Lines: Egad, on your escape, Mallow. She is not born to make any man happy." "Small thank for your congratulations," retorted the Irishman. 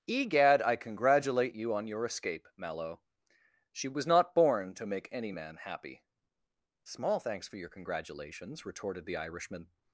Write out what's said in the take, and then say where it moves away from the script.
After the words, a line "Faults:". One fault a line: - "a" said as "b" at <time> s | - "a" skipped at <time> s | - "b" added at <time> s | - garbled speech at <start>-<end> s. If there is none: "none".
Egad, I congratulate you on your escape, Mallow. She was not born to make any man happy." "Small thanks for your congratulations," retorted the Irishman.
Faults:
- "I congratulate you" added at 0.6 s
- "is" said as "was" at 3.9 s
- "thank" said as "thanks" at 7.2 s